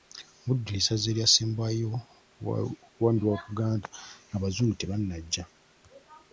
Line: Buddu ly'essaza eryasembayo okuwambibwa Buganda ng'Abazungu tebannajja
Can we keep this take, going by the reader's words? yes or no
yes